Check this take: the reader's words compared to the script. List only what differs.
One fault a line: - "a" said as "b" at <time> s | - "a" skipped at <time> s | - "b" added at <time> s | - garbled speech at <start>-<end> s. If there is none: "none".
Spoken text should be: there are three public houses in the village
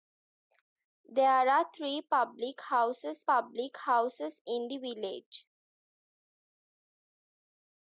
- "public houses" added at 3.3 s